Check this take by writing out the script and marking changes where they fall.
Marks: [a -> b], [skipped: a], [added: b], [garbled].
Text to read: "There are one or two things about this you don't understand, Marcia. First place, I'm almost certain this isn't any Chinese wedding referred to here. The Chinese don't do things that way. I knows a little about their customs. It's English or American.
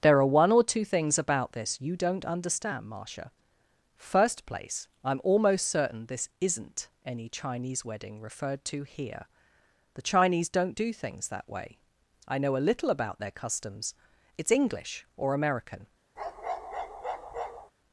"There are one or two things about this you don't understand, Marcia. First place, I'm almost certain this isn't any Chinese wedding referred to here. The Chinese don't do things that way. I [knows -> know] a little about their customs. It's English or American.